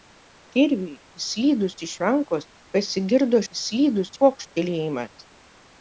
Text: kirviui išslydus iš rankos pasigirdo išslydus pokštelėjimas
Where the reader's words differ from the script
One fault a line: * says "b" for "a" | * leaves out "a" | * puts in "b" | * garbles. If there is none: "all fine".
all fine